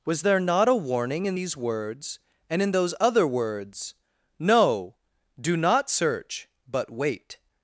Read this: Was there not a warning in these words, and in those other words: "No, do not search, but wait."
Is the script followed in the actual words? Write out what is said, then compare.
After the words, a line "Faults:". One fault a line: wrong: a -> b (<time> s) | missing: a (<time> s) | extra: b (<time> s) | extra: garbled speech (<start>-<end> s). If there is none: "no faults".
Was there not a warning in these words, and in those other words: "No, do not search, but wait."
Faults:
no faults